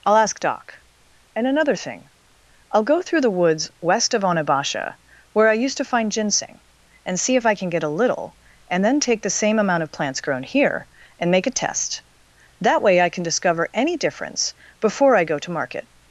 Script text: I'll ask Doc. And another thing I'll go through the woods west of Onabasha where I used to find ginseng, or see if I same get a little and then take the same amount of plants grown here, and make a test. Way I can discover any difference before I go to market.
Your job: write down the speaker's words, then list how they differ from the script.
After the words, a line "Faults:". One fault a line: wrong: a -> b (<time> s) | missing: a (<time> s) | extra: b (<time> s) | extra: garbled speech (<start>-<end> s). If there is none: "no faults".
I'll ask Doc. And another thing I'll go through the woods west of Onabasha where I used to find ginseng, and see if I can get a little and then take the same amount of plants grown here, and make a test. That way I can discover any difference before I go to market.
Faults:
wrong: or -> and (7.0 s)
wrong: same -> can (7.5 s)
extra: That (12.6 s)